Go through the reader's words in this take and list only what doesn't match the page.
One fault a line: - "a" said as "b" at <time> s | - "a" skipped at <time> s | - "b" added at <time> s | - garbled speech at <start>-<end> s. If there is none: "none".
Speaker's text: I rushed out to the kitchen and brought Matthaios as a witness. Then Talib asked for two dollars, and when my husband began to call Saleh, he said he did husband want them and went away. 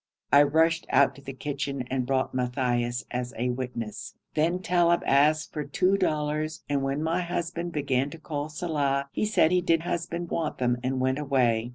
none